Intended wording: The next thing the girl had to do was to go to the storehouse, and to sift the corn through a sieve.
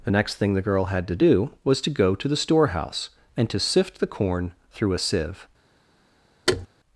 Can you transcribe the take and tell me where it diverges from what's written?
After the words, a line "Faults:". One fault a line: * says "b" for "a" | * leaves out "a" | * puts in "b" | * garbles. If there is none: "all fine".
The next thing the girl had to do was to go to the storehouse, and to sift the corn through a sieve.
Faults:
all fine